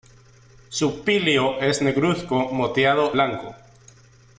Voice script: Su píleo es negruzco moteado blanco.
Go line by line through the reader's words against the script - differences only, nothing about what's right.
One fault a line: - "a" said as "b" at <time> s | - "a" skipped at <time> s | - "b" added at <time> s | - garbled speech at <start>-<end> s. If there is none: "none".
none